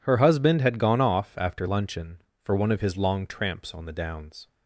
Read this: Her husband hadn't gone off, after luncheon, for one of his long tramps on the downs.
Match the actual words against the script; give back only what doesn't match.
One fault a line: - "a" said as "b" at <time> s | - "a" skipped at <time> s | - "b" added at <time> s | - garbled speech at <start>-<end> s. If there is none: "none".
- "hadn't" said as "had" at 0.6 s